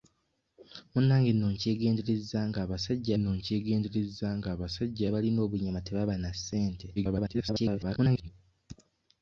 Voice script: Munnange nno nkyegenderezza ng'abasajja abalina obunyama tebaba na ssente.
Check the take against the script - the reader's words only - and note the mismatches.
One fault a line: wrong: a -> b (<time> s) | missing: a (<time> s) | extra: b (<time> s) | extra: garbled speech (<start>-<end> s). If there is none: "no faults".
extra: nno nkyegenderezza ng'abasajja (3.2 s)
extra: garbled speech (7.0-8.3 s)